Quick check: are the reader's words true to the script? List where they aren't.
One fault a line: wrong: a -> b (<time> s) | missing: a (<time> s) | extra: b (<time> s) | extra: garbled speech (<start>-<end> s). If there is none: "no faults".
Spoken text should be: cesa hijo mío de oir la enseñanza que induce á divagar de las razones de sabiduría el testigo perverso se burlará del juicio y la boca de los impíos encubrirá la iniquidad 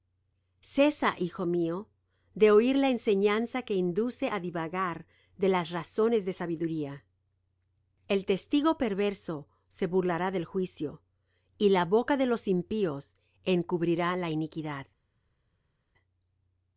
no faults